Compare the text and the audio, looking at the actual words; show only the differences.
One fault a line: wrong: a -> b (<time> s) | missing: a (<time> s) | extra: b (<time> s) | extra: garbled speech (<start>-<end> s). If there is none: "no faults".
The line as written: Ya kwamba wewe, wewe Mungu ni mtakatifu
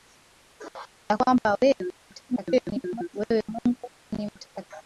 extra: garbled speech (2.1-3.1 s)